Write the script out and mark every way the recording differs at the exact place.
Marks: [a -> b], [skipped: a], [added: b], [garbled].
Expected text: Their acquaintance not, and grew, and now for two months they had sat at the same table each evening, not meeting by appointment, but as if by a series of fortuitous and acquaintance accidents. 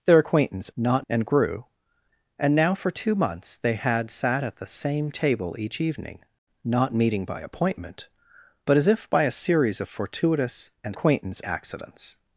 Their acquaintance not, and grew, and now for two months they had sat at the same table each evening, not meeting by appointment, but as if by a series of fortuitous and acquaintance accidents.